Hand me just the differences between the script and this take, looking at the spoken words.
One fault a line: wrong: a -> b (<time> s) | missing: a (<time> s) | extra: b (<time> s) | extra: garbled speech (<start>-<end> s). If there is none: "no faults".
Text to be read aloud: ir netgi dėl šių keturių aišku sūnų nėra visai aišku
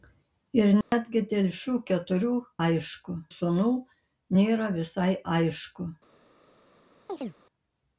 no faults